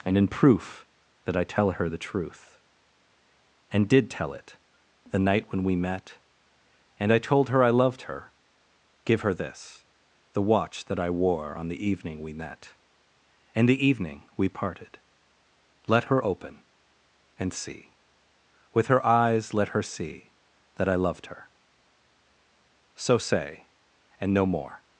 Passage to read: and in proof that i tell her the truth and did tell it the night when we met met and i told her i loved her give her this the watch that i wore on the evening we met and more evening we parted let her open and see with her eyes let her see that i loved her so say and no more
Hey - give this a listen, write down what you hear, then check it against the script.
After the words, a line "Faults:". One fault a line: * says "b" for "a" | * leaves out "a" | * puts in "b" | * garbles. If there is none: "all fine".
and in proof that i tell her the truth and did tell it the night when we met and i told her i loved her give her this the watch that i wore on the evening we met and the evening we parted let her open and see with her eyes let her see that i loved her so say and no more
Faults:
* leaves out "met"
* says "the" for "more"